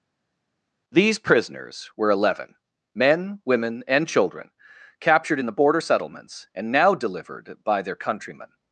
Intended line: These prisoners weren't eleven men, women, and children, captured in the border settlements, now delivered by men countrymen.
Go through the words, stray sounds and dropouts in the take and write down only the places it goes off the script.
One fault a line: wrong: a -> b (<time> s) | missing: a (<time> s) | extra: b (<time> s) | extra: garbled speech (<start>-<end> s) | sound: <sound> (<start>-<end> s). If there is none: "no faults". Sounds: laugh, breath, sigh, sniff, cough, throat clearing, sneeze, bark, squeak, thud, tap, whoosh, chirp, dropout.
wrong: weren't -> were (2.0 s)
extra: and (6.5 s)
wrong: men -> their (7.8 s)